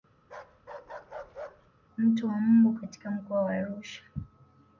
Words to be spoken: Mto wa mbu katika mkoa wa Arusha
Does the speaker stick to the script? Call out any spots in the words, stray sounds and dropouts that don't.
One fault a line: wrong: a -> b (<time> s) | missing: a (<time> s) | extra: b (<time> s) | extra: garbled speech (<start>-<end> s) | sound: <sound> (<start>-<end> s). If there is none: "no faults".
sound: bark (0.2-1.7 s)